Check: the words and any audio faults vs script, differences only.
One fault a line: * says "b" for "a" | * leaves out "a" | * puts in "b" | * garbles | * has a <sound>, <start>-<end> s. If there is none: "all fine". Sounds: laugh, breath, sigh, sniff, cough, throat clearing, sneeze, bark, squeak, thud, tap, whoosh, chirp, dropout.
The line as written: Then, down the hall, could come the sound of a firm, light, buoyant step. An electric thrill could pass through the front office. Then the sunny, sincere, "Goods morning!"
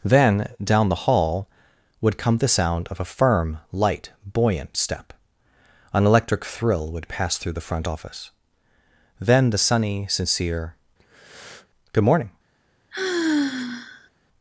* says "would" for "could"
* says "would" for "could"
* has a breath, 11.0-11.7 s
* says "Good" for "Goods"
* has a sigh, 12.9-14.1 s